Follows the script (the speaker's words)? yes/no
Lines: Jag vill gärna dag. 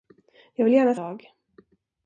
yes